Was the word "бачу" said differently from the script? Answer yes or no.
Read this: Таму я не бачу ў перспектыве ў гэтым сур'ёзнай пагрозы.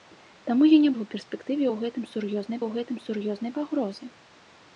yes